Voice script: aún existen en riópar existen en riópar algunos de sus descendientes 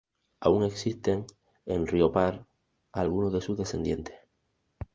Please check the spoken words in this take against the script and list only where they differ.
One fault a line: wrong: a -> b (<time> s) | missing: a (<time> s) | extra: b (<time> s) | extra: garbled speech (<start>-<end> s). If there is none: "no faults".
missing: existen en riópar (2.5 s)